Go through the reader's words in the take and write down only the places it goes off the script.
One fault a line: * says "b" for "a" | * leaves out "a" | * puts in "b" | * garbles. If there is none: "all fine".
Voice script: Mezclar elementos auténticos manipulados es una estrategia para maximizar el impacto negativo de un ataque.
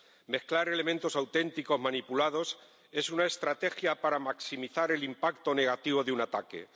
all fine